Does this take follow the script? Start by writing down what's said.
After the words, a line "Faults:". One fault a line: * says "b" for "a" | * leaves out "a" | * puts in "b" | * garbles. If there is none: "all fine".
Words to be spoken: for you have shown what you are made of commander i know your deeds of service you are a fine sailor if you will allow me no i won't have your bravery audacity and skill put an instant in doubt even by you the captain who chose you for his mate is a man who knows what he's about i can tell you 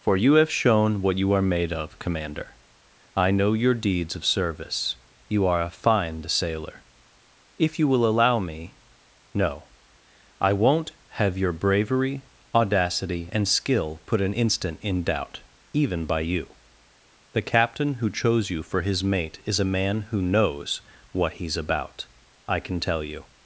for you have shown what you are made of commander i know your deeds of service you are a fine sailor if you will allow me no i won't have your bravery audacity and skill put an instant in doubt even by you the captain who chose you for his mate is a man who knows what he's about i can tell you
Faults:
all fine